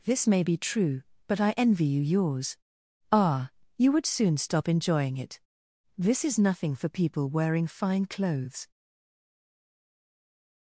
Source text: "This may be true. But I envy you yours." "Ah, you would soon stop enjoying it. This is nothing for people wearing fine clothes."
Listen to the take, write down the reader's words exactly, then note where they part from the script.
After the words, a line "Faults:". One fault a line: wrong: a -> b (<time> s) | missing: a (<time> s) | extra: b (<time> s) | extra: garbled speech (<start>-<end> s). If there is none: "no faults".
"This may be true. But I envy you yours." "Ah, you would soon stop enjoying it. This is nothing for people wearing fine clothes."
Faults:
no faults